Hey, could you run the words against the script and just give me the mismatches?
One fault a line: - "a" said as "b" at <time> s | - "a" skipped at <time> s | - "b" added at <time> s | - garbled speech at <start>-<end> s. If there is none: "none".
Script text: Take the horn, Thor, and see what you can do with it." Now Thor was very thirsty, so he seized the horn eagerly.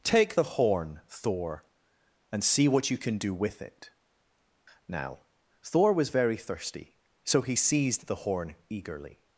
none